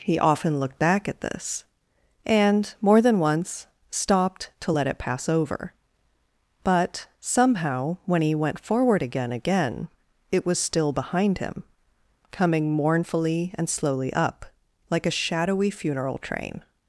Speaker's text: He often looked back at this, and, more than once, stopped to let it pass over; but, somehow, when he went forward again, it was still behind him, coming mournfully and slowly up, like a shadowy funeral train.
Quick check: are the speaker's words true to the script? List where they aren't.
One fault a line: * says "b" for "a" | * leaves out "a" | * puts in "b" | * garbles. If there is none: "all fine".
* puts in "again"